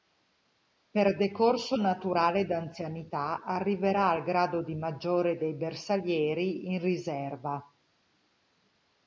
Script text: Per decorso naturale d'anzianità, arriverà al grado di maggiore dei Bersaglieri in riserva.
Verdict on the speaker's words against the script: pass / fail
pass